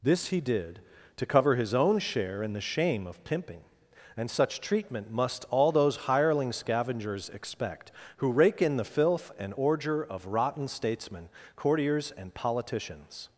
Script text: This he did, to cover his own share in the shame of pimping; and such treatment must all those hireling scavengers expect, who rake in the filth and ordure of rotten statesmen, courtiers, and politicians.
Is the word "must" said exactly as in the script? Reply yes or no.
yes